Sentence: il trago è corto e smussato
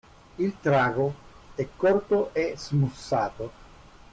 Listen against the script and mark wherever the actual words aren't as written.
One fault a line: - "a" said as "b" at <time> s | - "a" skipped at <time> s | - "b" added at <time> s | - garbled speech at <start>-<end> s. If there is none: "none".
none